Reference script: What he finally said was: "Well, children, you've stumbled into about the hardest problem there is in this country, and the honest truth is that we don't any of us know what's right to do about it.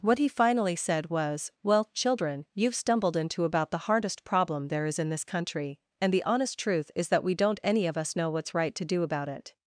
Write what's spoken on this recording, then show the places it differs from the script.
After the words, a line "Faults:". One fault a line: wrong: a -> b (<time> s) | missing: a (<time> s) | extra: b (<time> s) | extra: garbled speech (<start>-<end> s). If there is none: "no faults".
What he finally said was: "Well, children, you've stumbled into about the hardest problem there is in this country, and the honest truth is that we don't any of us know what's right to do about it.
Faults:
no faults